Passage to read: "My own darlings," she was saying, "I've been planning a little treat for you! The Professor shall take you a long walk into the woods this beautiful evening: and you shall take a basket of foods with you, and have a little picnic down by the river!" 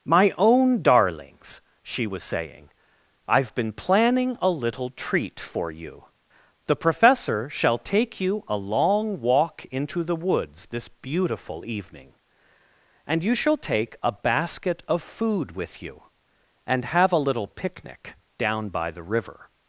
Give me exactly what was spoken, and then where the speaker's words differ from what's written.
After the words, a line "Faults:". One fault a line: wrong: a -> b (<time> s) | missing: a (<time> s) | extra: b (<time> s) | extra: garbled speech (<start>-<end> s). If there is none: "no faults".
"My own darlings," she was saying, "I've been planning a little treat for you! The Professor shall take you a long walk into the woods this beautiful evening: and you shall take a basket of food with you, and have a little picnic down by the river!"
Faults:
wrong: foods -> food (15.0 s)